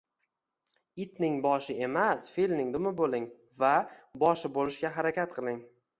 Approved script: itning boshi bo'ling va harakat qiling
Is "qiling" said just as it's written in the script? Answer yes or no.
yes